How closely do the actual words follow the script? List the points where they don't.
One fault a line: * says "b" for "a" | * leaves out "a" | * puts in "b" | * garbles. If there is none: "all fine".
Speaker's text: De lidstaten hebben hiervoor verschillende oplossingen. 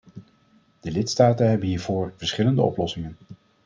all fine